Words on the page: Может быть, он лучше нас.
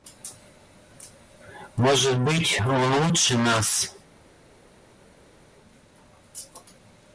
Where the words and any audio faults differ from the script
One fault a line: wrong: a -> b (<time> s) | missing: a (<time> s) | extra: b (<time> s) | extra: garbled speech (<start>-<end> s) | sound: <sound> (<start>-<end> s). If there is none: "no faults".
no faults